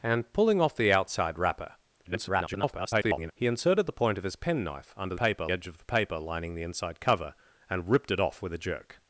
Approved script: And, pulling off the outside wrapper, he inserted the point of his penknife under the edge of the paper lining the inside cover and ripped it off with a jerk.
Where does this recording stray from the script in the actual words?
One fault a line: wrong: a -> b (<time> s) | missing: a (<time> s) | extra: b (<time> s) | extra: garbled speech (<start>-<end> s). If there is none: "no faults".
extra: garbled speech (2.0-3.3 s)
wrong: the -> paper (5.1 s)